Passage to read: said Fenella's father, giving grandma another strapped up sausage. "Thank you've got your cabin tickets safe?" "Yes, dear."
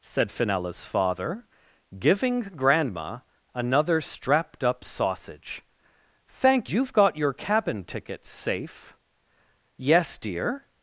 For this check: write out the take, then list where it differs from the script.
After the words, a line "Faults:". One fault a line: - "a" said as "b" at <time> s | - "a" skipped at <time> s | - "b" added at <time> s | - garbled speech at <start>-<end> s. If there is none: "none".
said Fenella's father, giving grandma another strapped up sausage. "Thank you've got your cabin tickets safe?" "Yes, dear."
Faults:
none